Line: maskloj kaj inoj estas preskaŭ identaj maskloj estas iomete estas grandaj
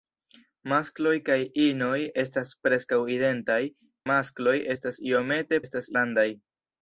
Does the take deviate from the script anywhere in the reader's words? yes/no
no